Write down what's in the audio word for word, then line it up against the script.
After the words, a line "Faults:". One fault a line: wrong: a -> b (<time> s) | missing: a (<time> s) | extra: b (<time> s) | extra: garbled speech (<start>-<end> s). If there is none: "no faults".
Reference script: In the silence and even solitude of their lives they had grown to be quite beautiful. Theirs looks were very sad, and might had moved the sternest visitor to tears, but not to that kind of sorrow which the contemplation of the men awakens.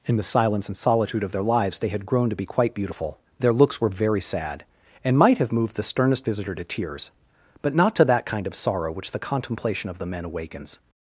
In the silence and solitude of their lives they had grown to be quite beautiful. Their looks were very sad, and might have moved the sternest visitor to tears, but not to that kind of sorrow which the contemplation of the men awakens.
Faults:
missing: even (0.8 s)
wrong: Theirs -> Their (3.4 s)
wrong: had -> have (5.4 s)